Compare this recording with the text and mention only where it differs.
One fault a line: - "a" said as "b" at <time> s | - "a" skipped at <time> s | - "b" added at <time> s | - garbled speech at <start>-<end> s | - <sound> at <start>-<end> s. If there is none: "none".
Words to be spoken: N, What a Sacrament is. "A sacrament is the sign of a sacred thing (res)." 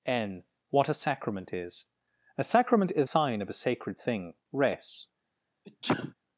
- "the" skipped at 3.1 s
- sneeze at 5.6-6.1 s